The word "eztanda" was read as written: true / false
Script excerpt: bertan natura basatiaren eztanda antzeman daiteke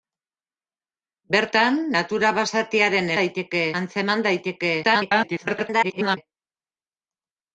false